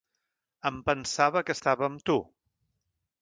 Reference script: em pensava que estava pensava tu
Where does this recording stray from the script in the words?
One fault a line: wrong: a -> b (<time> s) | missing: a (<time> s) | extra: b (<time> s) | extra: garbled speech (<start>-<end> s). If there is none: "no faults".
wrong: pensava -> amb (1.9 s)